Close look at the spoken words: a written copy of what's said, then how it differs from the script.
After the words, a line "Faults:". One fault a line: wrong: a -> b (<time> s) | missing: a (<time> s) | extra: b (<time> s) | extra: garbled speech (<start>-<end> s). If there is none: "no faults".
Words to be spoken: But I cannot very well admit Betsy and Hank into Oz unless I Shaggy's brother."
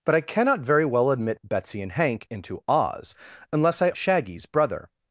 But I cannot very well admit Betsy and Hank into Oz unless I Shaggy's brother."
Faults:
no faults